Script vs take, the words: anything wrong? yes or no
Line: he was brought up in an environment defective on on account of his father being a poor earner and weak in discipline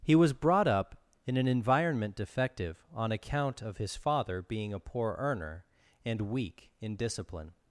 yes